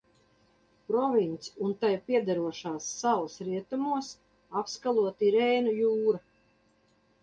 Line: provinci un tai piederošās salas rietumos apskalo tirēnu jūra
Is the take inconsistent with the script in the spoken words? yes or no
no